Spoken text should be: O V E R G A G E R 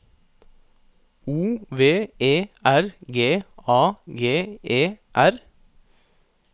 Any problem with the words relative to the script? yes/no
no